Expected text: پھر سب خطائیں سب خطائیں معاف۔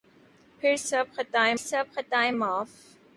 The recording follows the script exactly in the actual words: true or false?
true